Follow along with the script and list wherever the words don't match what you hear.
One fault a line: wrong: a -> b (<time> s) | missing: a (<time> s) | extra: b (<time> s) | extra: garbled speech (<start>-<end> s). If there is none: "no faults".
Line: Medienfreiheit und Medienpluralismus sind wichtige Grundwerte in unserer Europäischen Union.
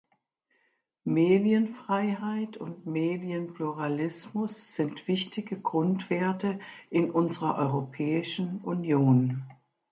no faults